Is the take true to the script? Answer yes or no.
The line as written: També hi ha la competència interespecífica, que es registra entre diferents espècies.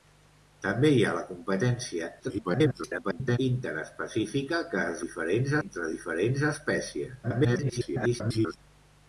no